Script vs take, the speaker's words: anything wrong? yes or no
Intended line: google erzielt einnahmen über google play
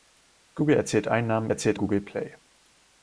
yes